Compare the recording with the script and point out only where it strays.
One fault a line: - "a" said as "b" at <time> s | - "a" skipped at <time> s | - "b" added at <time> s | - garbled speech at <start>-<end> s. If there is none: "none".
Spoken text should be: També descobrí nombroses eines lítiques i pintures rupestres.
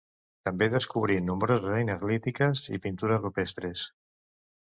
none